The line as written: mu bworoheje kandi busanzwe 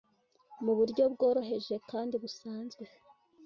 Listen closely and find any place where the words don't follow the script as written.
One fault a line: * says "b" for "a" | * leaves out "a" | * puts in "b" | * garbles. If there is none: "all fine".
* puts in "buryo"